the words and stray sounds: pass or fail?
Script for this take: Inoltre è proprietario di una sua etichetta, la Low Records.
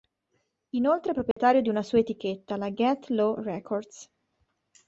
fail